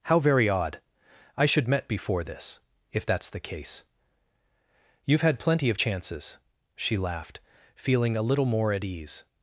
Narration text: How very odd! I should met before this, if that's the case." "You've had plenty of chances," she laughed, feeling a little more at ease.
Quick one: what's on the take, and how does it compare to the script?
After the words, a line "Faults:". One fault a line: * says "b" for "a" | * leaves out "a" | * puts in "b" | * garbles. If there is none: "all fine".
How very odd! I should met before this, if that's the case." "You've had plenty of chances," she laughed, feeling a little more at ease.
Faults:
all fine